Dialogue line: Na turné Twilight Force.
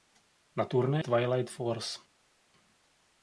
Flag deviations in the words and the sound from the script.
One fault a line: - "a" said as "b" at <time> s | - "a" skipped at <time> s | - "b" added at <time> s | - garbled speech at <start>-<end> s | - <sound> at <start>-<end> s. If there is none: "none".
none